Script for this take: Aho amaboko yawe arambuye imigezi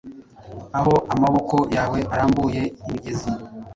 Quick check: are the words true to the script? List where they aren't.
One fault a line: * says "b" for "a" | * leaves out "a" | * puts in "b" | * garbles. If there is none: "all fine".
all fine